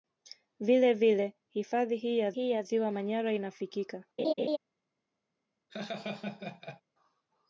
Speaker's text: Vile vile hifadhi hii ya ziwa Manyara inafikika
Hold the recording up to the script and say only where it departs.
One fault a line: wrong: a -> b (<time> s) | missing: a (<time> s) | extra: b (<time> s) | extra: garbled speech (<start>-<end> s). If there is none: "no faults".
extra: hii ya (2.3 s)